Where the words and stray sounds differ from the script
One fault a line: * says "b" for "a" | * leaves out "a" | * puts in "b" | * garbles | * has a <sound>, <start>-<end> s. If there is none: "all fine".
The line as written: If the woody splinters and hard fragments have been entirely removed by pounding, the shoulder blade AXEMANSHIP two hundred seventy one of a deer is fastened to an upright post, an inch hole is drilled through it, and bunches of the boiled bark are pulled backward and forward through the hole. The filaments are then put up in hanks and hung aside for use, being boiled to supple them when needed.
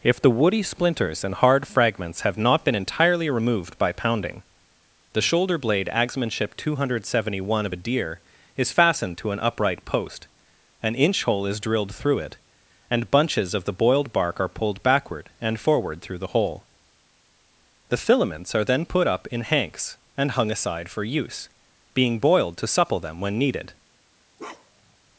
* puts in "not"
* has a bark, 24.4-25.0 s